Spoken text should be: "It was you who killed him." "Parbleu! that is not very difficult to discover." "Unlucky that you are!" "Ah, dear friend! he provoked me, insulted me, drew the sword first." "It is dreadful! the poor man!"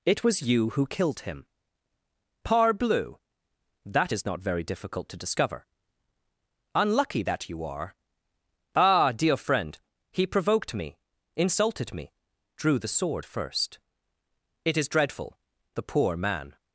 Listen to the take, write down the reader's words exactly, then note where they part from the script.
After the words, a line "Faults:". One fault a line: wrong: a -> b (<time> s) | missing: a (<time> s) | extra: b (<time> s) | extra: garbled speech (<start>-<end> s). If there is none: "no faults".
"It was you who killed him." "Parbleu! that is not very difficult to discover." "Unlucky that you are!" "Ah, dear friend! he provoked me, insulted me, drew the sword first." "It is dreadful! the poor man!"
Faults:
no faults